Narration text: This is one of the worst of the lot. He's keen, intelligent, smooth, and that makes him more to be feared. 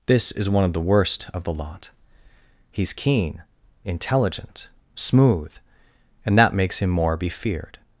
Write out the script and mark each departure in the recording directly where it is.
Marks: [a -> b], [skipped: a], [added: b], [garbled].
This is one of the worst of the lot. He's keen, intelligent, smooth, and that makes him more [skipped: to] be feared.